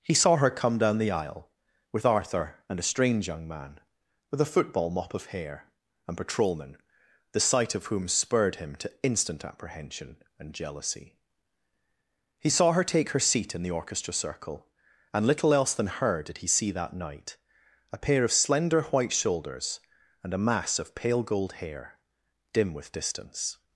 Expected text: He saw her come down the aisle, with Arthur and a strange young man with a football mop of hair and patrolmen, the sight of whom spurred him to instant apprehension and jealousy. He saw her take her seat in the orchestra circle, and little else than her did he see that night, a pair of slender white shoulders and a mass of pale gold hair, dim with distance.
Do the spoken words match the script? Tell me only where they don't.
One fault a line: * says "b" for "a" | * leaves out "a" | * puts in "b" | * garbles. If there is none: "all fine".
all fine